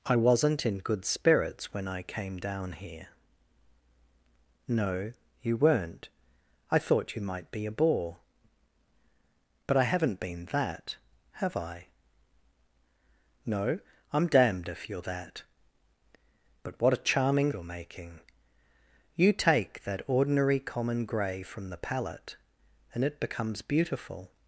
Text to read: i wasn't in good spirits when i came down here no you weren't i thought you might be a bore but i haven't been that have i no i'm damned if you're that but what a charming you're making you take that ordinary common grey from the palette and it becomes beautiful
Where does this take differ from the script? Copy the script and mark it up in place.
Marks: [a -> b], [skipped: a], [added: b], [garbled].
i wasn't in good spirits when i came down here no you weren't i thought you might be a bore but i haven't been that have i no i'm damned if you're that but what a charming you're making you take that ordinary common grey from the palette and it becomes beautiful